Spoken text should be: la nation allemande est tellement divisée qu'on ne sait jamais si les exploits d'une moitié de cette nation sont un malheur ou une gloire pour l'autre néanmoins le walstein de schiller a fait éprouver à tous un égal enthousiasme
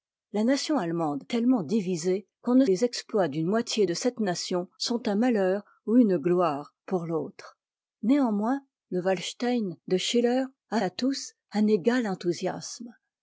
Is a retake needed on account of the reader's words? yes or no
yes